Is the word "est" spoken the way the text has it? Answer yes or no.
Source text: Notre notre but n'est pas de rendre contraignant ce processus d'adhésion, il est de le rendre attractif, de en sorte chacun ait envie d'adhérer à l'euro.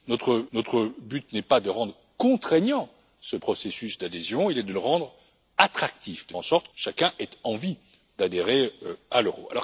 yes